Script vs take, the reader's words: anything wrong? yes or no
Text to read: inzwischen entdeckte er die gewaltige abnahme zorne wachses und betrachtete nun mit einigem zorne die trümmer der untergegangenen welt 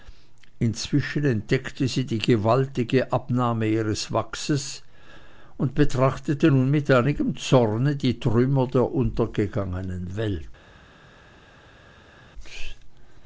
yes